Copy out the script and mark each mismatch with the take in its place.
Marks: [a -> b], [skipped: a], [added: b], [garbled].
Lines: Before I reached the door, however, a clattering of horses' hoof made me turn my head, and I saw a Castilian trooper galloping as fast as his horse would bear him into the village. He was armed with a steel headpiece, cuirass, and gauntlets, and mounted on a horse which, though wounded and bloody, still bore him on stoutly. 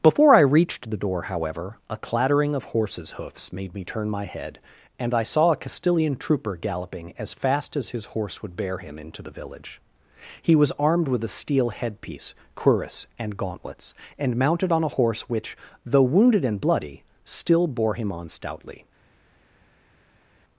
Before I reached the door, however, a clattering of horses' [hoof -> hoofs] made me turn my head, and I saw a Castilian trooper galloping as fast as his horse would bear him into the village. He was armed with a steel headpiece, cuirass, and gauntlets, and mounted on a horse which, though wounded and bloody, still bore him on stoutly.